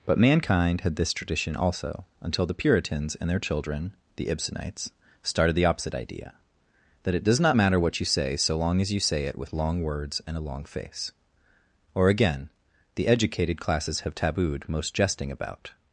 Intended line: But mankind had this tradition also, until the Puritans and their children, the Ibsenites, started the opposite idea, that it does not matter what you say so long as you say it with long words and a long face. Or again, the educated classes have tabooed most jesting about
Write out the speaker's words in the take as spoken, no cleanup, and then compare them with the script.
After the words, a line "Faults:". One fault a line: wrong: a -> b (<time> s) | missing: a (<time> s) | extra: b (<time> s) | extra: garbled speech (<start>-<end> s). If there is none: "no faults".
But mankind had this tradition also, until the Puritans and their children, the Ibsenites, started the opposite idea, that it does not matter what you say so long as you say it with long words and a long face. Or again, the educated classes have tabooed most jesting about
Faults:
no faults